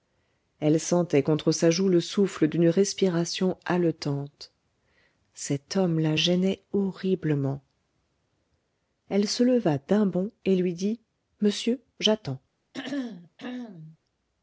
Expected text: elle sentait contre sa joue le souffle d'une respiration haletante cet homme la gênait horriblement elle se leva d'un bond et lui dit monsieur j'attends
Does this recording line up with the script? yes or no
yes